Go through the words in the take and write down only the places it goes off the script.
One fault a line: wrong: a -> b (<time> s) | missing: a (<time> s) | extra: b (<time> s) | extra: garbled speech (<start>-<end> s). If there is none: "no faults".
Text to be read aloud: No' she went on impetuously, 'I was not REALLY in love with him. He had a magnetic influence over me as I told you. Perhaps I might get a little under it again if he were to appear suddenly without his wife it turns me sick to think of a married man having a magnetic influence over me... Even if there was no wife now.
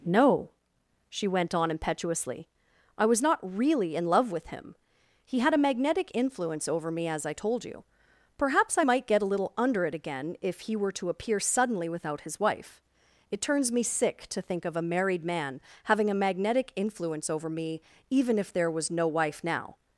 no faults